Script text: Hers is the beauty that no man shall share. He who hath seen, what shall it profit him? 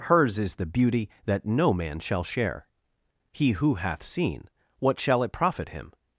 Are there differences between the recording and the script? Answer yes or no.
no